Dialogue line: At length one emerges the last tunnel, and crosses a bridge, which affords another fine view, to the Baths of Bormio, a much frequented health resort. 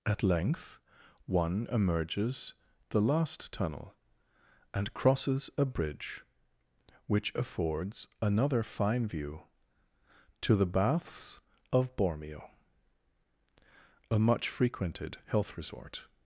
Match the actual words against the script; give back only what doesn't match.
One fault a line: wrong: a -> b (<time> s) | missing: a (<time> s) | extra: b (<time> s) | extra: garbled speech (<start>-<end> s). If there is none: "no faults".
no faults